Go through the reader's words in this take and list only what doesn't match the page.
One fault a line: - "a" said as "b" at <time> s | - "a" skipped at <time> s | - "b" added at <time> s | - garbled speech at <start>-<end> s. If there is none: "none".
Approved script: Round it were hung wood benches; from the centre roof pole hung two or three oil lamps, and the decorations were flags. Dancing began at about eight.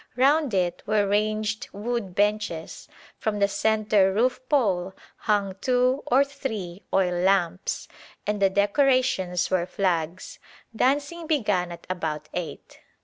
- "hung" said as "ranged" at 1.1 s